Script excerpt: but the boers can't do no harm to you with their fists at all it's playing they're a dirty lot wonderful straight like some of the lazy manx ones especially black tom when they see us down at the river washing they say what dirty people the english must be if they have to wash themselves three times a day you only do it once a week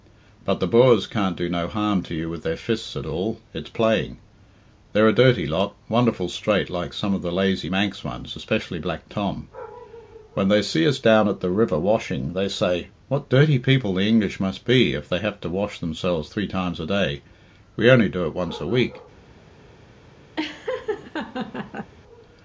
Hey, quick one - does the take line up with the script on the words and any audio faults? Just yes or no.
no